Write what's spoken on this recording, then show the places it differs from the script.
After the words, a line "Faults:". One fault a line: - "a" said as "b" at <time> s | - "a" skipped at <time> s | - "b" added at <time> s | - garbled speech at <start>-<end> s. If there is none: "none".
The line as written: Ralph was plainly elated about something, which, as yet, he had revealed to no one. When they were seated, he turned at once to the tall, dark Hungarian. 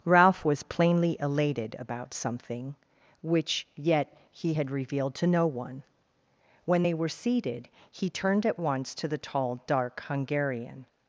Ralph was plainly elated about something, which, yet, he had revealed to no one. When they were seated, he turned at once to the tall, dark Hungarian.
Faults:
- "as" skipped at 3.7 s